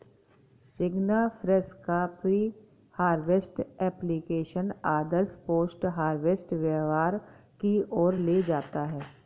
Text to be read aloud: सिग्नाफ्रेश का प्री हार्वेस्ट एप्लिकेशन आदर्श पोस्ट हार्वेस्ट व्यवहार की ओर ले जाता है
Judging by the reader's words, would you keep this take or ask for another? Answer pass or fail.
pass